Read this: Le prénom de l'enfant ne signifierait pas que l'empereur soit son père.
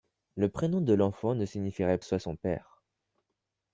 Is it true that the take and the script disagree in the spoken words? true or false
true